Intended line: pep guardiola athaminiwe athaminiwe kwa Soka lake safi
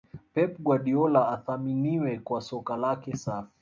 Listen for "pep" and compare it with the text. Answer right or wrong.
right